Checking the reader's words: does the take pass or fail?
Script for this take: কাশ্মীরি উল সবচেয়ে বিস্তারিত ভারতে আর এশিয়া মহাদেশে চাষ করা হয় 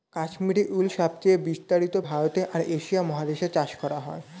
pass